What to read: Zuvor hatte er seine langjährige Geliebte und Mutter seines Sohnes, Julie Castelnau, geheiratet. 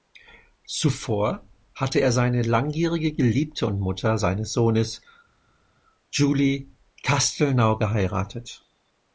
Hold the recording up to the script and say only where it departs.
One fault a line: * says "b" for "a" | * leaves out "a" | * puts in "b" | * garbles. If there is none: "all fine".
all fine